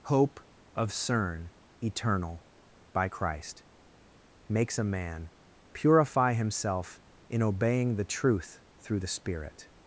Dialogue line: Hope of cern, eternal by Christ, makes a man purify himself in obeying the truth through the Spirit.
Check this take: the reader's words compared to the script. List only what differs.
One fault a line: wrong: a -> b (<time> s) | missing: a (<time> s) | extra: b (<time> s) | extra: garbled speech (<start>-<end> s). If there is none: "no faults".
no faults